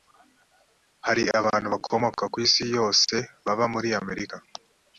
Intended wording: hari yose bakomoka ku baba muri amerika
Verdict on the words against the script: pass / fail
fail